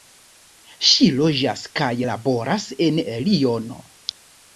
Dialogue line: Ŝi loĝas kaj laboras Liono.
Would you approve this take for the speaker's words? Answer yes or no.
no